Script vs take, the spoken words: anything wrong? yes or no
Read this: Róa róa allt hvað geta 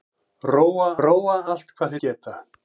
no